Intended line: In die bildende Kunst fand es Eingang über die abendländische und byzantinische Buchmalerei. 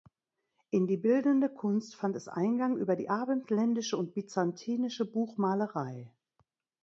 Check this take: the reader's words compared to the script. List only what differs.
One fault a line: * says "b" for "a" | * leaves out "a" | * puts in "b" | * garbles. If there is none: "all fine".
all fine